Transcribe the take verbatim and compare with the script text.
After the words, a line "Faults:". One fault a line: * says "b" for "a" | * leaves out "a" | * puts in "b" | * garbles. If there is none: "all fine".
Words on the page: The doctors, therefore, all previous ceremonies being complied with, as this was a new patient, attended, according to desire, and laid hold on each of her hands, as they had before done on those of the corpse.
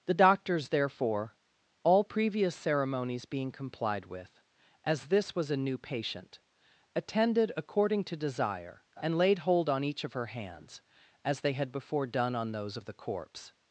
The doctors, therefore, all previous ceremonies being complied with, as this was a new patient, attended, according to desire, and laid hold on each of her hands, as they had before done on those of the corpse.
Faults:
all fine